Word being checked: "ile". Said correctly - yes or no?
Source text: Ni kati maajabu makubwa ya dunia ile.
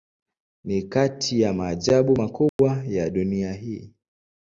no